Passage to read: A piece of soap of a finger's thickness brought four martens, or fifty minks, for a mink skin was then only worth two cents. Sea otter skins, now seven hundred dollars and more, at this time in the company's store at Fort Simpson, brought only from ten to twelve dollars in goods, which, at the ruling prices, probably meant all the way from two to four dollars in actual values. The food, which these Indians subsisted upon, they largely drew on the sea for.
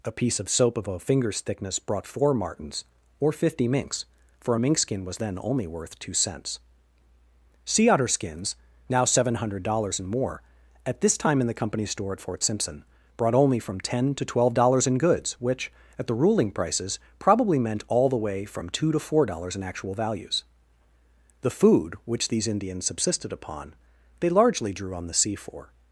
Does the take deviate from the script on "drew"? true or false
false